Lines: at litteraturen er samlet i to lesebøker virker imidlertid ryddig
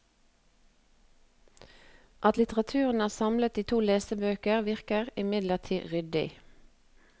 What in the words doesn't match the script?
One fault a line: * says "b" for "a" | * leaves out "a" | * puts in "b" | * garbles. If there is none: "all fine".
all fine